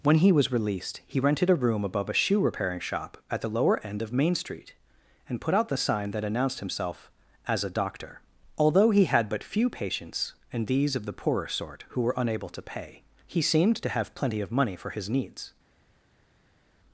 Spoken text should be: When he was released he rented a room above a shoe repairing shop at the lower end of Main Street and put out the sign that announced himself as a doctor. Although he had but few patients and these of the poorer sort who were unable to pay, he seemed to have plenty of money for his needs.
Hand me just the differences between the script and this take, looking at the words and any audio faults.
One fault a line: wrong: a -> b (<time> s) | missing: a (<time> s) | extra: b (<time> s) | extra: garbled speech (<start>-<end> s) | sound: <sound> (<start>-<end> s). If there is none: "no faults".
no faults